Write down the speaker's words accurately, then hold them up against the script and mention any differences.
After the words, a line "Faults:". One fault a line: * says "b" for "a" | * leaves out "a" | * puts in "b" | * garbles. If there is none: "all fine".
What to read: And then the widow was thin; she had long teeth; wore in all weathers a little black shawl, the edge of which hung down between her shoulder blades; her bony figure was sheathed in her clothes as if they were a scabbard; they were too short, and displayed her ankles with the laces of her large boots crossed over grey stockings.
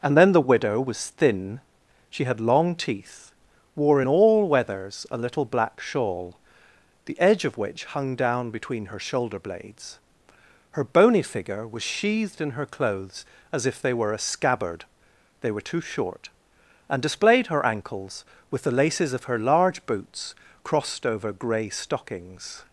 And then the widow was thin; she had long teeth; wore in all weathers a little black shawl, the edge of which hung down between her shoulder blades; her bony figure was sheathed in her clothes as if they were a scabbard; they were too short, and displayed her ankles with the laces of her large boots crossed over grey stockings.
Faults:
all fine